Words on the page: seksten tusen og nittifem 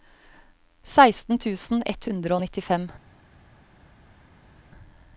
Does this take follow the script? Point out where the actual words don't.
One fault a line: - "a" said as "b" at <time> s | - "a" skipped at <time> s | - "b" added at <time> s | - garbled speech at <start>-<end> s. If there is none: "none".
- "ett hundre" added at 1.9 s